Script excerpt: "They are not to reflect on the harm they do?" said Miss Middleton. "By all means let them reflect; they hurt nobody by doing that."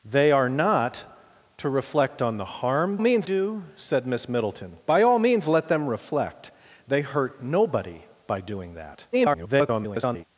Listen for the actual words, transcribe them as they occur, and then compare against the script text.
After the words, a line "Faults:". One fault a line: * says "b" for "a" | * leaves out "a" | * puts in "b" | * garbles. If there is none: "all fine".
"They are not to reflect on the harm means do?" said Miss Middleton. "By all means let them reflect; they hurt nobody by doing that." [garbled]
Faults:
* says "means" for "they"
* garbles